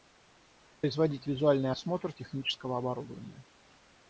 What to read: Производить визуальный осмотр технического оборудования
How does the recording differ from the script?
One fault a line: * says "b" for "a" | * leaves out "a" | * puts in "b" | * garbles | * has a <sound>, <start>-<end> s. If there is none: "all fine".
all fine